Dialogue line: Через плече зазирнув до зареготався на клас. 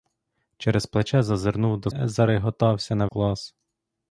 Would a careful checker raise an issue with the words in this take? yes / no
no